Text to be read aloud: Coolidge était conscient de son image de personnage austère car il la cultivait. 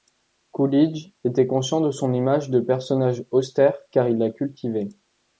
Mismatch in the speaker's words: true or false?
false